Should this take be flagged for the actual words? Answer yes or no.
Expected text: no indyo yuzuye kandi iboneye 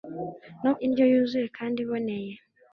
no